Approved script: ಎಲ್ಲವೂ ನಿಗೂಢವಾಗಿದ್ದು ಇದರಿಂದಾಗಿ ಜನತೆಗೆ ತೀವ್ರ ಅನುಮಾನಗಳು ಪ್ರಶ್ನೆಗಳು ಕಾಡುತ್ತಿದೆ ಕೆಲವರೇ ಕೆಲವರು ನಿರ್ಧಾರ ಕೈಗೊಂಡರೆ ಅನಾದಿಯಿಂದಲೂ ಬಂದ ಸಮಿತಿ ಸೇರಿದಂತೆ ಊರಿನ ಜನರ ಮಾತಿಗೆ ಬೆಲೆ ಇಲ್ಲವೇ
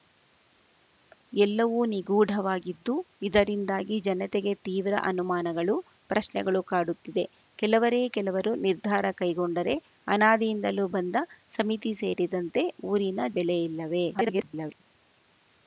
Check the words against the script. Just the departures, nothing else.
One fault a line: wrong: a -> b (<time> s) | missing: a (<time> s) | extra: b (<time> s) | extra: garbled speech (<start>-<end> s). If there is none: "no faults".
missing: ಜನರ ಮಾತಿಗೆ (13.3 s)
extra: garbled speech (14.1-14.8 s)